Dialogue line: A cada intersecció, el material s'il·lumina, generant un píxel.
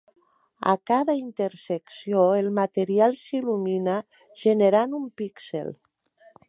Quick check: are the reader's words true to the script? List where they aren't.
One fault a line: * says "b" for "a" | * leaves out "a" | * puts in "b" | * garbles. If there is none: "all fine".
all fine